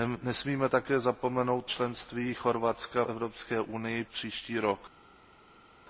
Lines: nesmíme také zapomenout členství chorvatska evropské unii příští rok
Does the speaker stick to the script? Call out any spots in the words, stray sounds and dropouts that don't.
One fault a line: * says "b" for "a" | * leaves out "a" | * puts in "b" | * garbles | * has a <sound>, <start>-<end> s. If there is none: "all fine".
all fine